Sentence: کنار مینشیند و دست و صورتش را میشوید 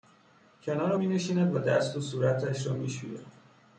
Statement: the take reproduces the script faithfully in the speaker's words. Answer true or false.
true